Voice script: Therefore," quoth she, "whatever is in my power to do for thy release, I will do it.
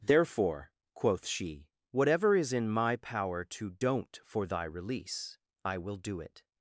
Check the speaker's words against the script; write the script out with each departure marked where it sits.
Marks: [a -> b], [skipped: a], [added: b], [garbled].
Therefore," quoth she, "whatever is in my power to [do -> don't] for thy release, I will do it.